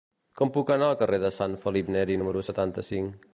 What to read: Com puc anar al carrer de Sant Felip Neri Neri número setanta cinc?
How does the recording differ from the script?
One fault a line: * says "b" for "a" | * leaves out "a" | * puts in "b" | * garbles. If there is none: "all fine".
* leaves out "Neri"